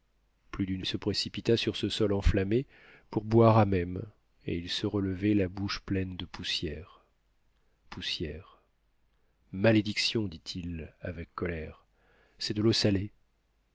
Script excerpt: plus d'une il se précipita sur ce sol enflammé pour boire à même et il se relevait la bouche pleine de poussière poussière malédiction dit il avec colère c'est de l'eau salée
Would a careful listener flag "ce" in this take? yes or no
no